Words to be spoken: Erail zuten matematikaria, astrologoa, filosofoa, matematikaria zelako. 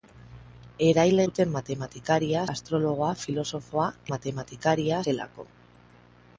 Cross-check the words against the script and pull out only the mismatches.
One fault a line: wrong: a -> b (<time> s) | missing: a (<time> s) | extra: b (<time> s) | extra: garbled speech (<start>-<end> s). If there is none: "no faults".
no faults